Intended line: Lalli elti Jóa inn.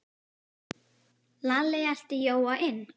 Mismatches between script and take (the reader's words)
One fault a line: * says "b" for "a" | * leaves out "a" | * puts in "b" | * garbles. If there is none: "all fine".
all fine